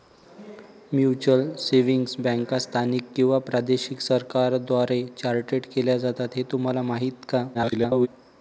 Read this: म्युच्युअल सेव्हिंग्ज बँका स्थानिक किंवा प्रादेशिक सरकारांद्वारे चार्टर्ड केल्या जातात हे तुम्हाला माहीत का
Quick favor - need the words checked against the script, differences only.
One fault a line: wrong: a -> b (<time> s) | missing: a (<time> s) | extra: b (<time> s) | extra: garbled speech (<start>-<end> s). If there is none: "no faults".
extra: garbled speech (7.5-8.1 s)